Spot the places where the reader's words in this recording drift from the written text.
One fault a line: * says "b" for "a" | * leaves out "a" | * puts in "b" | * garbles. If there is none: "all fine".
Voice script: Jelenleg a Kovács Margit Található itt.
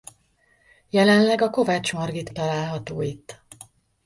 all fine